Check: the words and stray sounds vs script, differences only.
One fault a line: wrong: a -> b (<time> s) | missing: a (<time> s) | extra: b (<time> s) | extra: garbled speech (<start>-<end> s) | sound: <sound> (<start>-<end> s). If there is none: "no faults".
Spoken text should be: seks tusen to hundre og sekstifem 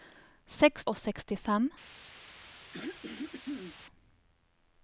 missing: tusen to hundre (0.8 s)
sound: throat clearing (2.7-3.8 s)